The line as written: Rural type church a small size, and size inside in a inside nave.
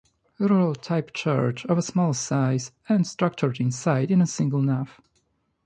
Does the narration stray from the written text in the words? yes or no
yes